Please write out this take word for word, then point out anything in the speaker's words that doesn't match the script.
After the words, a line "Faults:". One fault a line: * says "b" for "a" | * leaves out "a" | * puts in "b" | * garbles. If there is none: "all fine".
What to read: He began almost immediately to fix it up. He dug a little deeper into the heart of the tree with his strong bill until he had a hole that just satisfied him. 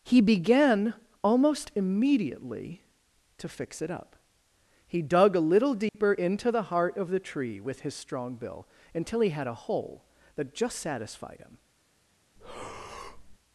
He began almost immediately to fix it up. He dug a little deeper into the heart of the tree with his strong bill until he had a hole that just satisfied him.
Faults:
all fine